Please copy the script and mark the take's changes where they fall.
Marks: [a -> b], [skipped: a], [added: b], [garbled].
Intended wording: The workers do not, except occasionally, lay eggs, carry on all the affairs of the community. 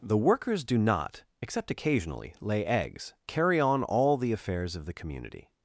The workers do not, except occasionally, lay eggs, carry on all the affairs of the community.